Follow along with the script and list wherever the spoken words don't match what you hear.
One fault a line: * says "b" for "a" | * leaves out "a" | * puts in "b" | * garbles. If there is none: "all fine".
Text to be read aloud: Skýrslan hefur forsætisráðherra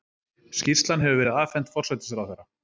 * puts in "verið afhent"